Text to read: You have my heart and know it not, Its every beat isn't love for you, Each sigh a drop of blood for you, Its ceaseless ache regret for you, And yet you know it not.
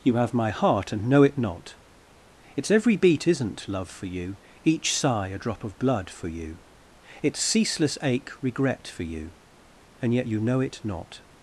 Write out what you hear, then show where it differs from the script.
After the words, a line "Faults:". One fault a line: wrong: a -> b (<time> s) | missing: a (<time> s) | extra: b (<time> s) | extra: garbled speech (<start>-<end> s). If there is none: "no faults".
You have my heart and know it not, Its every beat isn't love for you, Each sigh a drop of blood for you, Its ceaseless ache regret for you, And yet you know it not.
Faults:
no faults